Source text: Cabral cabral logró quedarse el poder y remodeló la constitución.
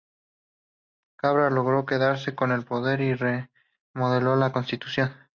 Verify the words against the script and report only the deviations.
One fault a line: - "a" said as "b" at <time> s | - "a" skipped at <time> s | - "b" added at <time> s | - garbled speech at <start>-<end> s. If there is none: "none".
- "cabral" skipped at 1.5 s
- "con" added at 2.3 s